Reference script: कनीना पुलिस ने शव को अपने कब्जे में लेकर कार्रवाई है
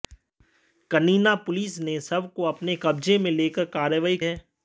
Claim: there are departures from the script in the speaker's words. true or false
false